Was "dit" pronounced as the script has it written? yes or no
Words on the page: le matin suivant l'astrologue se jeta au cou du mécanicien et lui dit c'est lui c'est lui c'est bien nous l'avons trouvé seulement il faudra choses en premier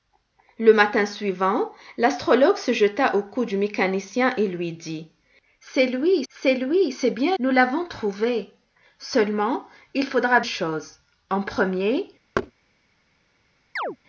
yes